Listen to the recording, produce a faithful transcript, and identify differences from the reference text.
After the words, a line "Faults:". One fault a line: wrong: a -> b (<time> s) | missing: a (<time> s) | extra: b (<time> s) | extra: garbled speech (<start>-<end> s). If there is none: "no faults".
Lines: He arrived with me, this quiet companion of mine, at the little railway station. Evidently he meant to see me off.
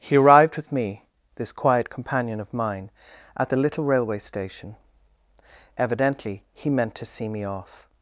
He arrived with me, this quiet companion of mine, at the little railway station. Evidently he meant to see me off.
Faults:
no faults